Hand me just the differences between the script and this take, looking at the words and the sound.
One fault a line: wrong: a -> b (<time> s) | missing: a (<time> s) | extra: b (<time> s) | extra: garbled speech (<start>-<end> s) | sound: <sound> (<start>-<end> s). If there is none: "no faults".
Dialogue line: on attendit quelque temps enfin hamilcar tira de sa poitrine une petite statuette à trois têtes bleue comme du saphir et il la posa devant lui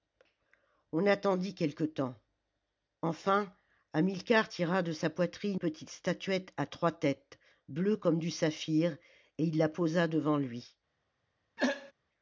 missing: une (5.6 s)
sound: throat clearing (11.6-11.9 s)